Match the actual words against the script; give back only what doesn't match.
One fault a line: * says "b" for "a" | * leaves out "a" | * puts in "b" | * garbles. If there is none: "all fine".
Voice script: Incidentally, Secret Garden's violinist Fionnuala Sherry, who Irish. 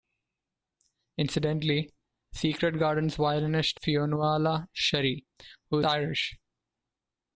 all fine